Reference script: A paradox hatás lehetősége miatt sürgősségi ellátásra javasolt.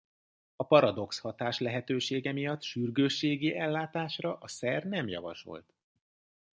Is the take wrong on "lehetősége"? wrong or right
right